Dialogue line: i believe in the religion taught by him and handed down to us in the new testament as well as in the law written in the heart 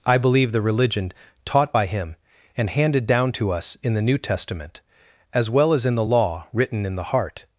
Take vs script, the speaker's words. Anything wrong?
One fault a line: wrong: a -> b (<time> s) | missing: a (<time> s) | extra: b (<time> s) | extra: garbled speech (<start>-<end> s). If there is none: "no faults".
missing: in (0.5 s)